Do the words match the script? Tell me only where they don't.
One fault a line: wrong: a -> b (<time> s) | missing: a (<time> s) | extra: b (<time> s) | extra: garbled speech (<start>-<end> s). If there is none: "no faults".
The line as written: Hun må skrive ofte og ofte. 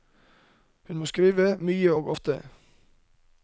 wrong: ofte -> mye (1.6 s)